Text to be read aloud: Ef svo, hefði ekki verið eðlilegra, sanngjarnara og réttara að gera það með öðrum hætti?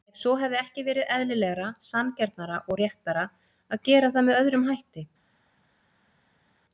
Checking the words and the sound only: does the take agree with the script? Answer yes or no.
yes